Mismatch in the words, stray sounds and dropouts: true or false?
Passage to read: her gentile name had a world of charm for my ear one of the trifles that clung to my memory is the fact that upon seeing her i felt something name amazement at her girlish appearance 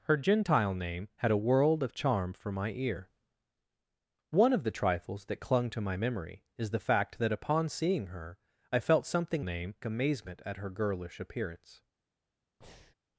true